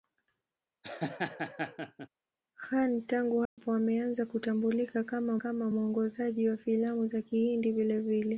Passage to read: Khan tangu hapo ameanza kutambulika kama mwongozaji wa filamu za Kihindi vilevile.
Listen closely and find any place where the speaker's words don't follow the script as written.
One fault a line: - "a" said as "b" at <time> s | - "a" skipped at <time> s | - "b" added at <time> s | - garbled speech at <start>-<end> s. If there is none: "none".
- "kama" added at 5.4 s